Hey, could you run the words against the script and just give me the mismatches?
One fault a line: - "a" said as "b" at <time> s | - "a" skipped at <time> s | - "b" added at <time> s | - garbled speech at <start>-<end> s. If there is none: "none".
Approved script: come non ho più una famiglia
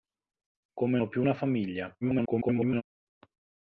- "non" skipped at 1.0 s
- garbled speech at 2.0-2.8 s